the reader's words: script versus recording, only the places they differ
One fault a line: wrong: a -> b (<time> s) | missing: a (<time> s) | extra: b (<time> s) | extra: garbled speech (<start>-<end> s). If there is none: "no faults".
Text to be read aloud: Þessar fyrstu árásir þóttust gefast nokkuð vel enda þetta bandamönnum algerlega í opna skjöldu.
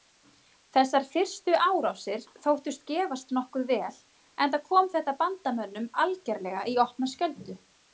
extra: kom (4.7 s)